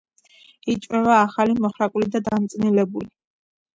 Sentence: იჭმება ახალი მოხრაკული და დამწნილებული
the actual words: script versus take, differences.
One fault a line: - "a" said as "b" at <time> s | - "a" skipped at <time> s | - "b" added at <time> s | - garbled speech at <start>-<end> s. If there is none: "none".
none